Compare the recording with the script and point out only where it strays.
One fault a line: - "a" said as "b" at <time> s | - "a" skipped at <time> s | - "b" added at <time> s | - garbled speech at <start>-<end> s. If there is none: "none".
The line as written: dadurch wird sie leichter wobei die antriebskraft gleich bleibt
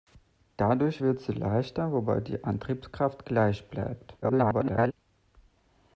- garbled speech at 4.2-4.9 s